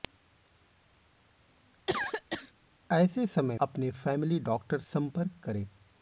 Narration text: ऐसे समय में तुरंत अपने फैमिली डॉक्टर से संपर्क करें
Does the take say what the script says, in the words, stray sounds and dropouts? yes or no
no